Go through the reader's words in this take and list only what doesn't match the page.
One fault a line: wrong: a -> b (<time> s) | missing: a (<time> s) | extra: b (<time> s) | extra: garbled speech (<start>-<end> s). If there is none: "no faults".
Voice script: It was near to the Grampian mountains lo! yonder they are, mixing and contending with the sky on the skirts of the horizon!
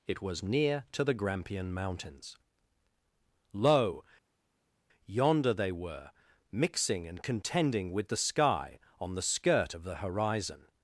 wrong: are -> were (5.7 s)
wrong: skirts -> skirt (9.2 s)